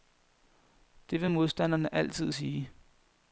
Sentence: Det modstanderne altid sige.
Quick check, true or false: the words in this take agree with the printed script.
false